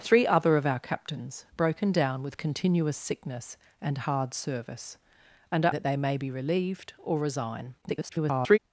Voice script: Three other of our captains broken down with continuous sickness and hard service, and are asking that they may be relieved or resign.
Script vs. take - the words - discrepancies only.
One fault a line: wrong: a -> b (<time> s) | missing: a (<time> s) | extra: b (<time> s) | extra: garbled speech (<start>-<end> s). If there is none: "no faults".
missing: asking (5.8 s)
extra: garbled speech (7.8-8.6 s)